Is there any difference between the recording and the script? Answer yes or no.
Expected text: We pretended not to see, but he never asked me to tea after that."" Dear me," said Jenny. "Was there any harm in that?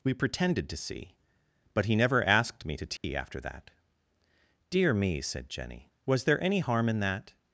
yes